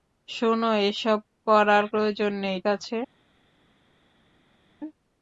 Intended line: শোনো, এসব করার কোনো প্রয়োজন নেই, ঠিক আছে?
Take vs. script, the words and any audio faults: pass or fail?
fail